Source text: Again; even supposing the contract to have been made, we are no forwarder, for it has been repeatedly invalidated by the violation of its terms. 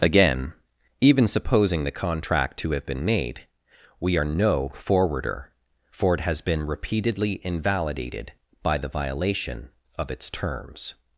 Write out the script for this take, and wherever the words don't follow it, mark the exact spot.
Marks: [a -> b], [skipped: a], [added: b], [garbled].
Again; even supposing the contract to have been made, we are no forwarder, for it has been repeatedly invalidated by the violation of its terms.